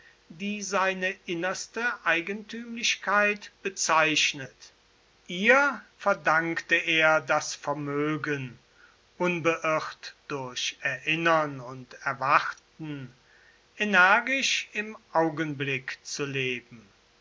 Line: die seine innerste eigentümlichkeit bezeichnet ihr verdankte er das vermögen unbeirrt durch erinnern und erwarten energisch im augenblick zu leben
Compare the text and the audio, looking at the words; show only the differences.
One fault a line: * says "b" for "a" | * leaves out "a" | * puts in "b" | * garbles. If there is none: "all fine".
all fine